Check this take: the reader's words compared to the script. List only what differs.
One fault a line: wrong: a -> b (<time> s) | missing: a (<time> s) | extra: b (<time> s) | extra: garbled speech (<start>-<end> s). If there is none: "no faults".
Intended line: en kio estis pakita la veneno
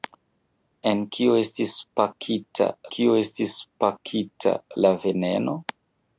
extra: kio estis pakita (3.0 s)